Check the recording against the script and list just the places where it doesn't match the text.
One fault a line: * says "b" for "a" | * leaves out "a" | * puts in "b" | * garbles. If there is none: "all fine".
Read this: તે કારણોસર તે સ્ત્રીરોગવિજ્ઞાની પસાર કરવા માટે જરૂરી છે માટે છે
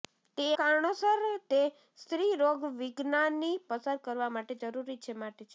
all fine